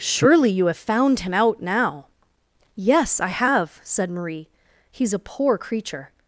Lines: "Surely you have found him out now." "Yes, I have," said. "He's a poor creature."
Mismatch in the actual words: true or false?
true